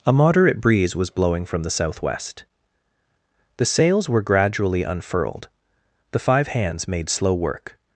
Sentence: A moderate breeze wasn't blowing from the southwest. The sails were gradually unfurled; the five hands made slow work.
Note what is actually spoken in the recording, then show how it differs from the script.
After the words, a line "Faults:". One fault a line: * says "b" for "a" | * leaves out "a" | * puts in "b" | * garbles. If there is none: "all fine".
A moderate breeze was blowing from the southwest. The sails were gradually unfurled; the five hands made slow work.
Faults:
* says "was" for "wasn't"